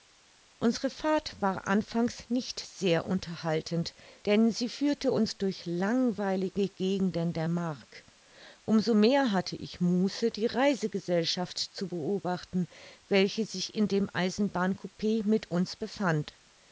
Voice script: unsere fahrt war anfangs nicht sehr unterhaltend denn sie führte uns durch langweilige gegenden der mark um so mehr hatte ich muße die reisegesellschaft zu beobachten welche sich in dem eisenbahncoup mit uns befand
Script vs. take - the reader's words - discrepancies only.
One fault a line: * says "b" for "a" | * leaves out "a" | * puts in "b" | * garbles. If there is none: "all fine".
all fine